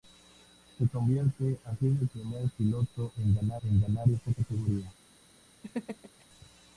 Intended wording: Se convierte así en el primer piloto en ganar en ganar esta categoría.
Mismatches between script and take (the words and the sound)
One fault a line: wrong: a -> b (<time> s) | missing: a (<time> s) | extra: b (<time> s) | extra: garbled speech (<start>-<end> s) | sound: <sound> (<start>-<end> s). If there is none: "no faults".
sound: laugh (5.6-6.3 s)